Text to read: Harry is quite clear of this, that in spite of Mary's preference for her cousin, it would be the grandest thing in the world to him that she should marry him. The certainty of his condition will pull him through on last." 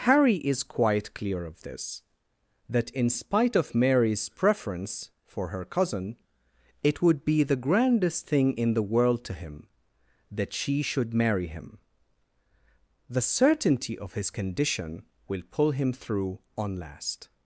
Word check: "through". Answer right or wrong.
right